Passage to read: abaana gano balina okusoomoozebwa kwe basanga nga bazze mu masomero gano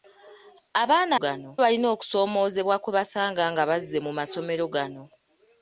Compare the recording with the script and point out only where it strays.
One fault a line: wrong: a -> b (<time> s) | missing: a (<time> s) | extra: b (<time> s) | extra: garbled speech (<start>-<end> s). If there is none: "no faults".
no faults